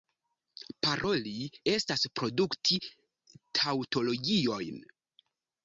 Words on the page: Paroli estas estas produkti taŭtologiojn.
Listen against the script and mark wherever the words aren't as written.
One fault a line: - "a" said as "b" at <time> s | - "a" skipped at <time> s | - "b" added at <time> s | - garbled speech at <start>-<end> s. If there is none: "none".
- "estas" skipped at 2.1 s